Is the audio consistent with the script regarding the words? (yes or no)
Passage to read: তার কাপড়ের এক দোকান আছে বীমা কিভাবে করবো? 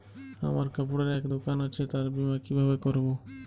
no